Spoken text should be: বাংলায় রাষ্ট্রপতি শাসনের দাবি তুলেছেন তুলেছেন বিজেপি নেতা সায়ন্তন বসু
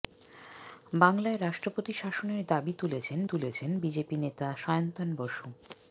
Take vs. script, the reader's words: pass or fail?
pass